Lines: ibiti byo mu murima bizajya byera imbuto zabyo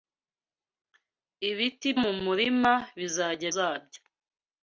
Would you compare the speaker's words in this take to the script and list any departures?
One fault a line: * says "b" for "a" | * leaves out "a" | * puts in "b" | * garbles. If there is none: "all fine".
* leaves out "byo"
* leaves out "byera imbuto"